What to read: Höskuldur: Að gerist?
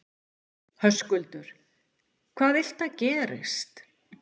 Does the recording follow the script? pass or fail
fail